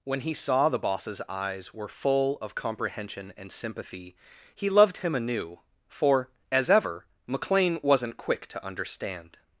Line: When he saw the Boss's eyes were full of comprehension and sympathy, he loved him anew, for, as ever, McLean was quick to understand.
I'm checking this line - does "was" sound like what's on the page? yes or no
no